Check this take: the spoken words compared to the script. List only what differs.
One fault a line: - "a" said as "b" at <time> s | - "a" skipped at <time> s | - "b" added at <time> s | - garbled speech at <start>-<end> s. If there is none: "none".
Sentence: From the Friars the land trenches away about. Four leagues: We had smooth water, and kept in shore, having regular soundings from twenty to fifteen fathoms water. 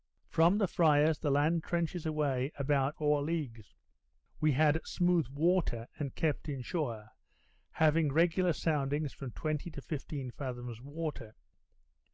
none